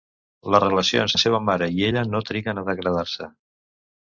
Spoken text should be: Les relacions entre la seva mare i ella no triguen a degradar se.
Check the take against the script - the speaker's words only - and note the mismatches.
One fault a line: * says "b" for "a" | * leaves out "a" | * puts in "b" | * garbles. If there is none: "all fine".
* leaves out "entre"